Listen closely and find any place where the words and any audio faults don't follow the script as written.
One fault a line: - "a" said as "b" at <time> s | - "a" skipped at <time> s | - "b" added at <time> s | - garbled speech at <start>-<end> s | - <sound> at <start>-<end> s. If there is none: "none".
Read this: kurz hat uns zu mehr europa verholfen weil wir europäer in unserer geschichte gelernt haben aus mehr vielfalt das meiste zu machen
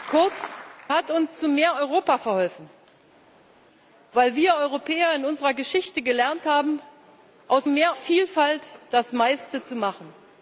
none